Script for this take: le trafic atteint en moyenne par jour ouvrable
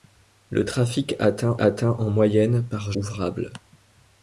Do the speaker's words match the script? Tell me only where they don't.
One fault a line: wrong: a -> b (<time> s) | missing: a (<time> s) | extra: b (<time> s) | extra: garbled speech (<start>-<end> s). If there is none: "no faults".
extra: atteint (1.6 s)
missing: jour (2.9 s)